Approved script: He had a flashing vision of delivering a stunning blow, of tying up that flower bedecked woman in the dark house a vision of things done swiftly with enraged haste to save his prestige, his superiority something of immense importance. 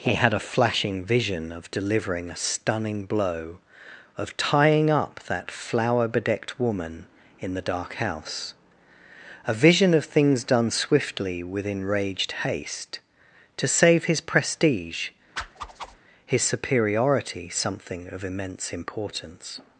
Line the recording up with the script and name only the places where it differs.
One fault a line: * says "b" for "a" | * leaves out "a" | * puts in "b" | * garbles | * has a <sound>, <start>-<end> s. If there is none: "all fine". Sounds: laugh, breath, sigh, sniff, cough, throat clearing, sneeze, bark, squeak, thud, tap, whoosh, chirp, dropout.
* has a whoosh, 15.4-16.0 s